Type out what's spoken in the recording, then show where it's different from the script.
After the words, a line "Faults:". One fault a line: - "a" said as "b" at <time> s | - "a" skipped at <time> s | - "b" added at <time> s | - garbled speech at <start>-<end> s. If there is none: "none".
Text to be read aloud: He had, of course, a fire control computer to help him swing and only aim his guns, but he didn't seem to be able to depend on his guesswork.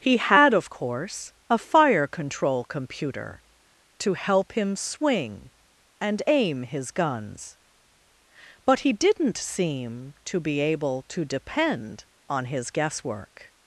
He had, of course, a fire control computer to help him swing and aim his guns, but he didn't seem to be able to depend on his guesswork.
Faults:
- "only" skipped at 6.2 s